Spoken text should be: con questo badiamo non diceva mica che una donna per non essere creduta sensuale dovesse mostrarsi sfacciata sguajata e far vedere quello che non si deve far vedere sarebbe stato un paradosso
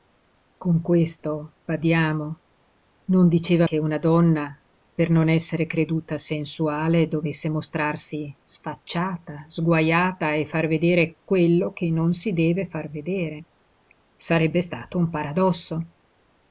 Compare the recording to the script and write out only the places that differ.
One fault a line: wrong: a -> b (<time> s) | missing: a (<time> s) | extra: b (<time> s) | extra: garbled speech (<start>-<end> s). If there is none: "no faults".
missing: mica (3.7 s)